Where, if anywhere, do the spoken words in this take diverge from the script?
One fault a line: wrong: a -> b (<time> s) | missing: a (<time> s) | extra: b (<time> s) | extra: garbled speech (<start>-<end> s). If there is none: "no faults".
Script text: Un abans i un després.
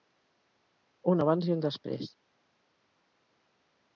no faults